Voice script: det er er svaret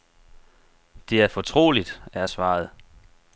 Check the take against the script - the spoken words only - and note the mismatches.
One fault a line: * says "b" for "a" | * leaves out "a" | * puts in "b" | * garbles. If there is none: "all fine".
* puts in "fortroligt"